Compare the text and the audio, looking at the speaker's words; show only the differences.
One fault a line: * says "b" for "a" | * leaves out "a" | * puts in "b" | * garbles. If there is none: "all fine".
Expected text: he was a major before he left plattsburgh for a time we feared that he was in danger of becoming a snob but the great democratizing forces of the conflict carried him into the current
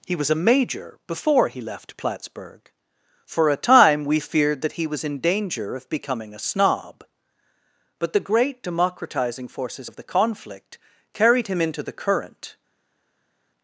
all fine